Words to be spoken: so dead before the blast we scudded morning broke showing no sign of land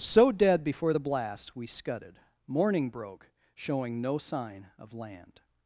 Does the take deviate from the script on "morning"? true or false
false